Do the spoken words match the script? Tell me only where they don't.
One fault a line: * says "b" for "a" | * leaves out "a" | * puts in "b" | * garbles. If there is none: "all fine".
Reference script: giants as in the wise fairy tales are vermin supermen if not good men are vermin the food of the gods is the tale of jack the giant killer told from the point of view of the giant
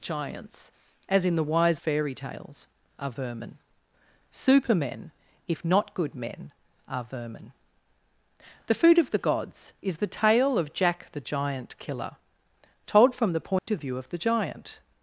all fine